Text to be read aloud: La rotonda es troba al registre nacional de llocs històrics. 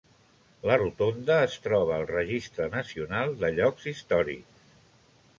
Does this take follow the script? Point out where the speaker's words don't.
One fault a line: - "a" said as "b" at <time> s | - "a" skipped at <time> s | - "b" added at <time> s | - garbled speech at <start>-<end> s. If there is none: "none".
none